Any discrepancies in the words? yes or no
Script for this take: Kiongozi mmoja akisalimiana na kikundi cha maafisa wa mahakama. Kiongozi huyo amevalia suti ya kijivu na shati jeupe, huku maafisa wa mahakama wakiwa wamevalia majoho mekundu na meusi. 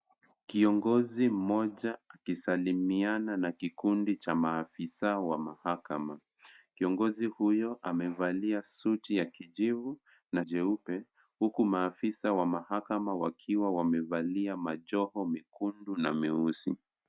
yes